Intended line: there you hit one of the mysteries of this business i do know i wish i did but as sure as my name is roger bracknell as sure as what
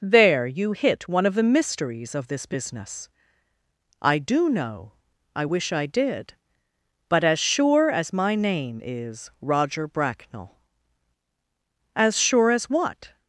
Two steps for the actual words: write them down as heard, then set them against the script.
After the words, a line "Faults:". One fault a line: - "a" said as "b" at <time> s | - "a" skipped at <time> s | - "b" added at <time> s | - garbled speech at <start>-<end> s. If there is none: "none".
there you hit one of the mysteries of this business i do know i wish i did but as sure as my name is roger bracknell as sure as what
Faults:
none